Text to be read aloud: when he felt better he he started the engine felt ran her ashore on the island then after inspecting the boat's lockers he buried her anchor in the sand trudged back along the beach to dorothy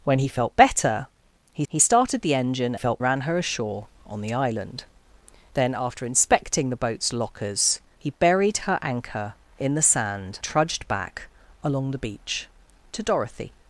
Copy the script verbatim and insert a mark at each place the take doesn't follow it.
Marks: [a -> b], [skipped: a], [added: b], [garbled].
when he felt better he he started the engine felt ran her ashore on the island then after inspecting the boat's lockers he buried her anchor in the sand trudged back along the beach to dorothy